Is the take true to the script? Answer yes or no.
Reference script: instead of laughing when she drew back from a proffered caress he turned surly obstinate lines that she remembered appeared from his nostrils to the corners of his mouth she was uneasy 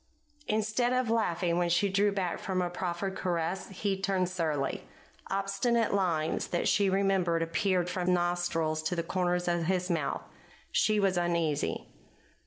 no